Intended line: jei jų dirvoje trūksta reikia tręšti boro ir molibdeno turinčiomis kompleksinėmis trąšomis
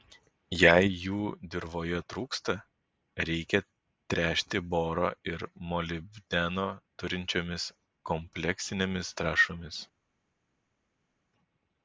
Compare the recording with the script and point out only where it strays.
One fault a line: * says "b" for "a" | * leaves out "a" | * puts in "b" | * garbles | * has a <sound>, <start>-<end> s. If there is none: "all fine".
all fine